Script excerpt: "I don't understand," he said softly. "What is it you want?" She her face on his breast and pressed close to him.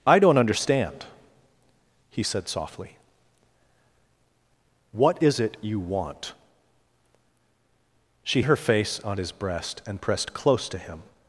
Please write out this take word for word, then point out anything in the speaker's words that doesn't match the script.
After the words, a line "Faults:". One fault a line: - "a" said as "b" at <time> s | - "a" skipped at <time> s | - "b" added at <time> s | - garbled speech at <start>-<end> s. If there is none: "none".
"I don't understand," he said softly. "What is it you want?" She her face on his breast and pressed close to him.
Faults:
none